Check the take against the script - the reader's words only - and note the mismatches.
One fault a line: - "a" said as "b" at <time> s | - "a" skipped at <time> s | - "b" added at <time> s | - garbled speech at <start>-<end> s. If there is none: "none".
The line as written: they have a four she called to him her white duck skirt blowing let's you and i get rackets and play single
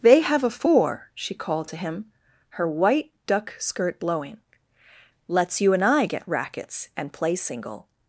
none